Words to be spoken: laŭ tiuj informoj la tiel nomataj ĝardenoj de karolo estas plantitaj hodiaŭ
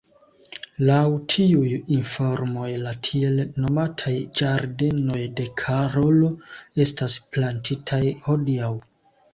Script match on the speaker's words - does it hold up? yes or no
yes